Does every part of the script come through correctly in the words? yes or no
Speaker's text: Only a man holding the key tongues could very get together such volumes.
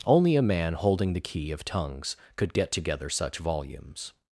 no